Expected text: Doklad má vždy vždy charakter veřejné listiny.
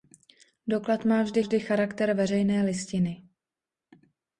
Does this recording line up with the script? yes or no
yes